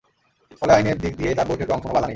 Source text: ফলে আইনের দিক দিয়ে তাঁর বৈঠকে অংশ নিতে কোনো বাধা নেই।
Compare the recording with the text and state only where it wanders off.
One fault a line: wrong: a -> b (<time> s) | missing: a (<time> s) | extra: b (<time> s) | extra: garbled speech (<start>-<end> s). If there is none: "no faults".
missing: নিতে (1.9 s)